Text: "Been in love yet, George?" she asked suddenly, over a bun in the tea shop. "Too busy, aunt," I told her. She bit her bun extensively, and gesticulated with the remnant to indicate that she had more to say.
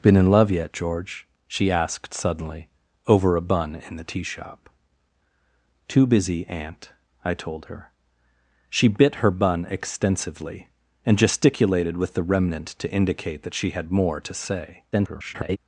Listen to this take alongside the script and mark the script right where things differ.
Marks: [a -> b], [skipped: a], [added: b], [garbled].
"Been in love yet, George?" she asked suddenly, over a bun in the tea shop. "Too busy, aunt," I told her. She bit her bun extensively, and gesticulated with the remnant to indicate that she had more to say. [garbled]